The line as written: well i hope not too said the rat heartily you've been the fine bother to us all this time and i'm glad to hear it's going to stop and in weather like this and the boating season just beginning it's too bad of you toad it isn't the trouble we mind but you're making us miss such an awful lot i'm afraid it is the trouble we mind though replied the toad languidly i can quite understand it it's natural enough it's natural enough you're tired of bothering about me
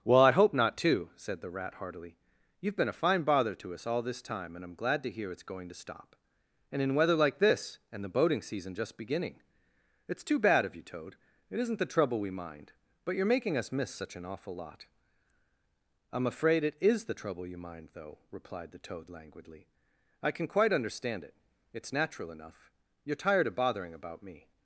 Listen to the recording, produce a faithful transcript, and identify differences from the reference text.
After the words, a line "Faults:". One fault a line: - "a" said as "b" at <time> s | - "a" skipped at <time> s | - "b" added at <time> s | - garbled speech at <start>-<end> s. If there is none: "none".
well i hope not too said the rat heartily you've been a fine bother to us all this time and i'm glad to hear it's going to stop and in weather like this and the boating season just beginning it's too bad of you toad it isn't the trouble we mind but you're making us miss such an awful lot i'm afraid it is the trouble you mind though replied the toad languidly i can quite understand it it's natural enough you're tired of bothering about me
Faults:
- "the" said as "a" at 2.9 s
- "we" said as "you" at 17.4 s
- "it's natural enough" skipped at 22.7 s